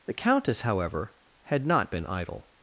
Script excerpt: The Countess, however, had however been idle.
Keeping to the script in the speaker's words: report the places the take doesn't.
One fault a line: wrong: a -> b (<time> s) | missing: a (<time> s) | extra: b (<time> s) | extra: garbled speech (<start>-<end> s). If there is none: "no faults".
wrong: however -> not (1.6 s)